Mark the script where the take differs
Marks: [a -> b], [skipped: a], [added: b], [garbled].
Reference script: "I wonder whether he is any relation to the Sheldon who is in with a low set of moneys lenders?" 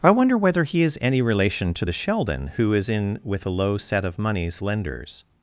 "I wonder whether he is any relation to the Sheldon who is in with a low set of moneys lenders?"